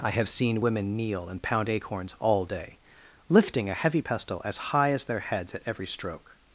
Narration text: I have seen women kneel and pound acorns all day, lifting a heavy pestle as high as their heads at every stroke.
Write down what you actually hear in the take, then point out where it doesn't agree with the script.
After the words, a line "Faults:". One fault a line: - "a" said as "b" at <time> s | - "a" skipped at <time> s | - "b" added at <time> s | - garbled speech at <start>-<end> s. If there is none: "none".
I have seen women kneel and pound acorns all day, lifting a heavy pestle as high as their heads at every stroke.
Faults:
none